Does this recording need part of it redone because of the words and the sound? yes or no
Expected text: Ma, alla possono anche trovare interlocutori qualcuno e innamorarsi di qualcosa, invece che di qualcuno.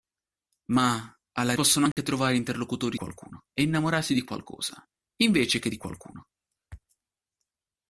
yes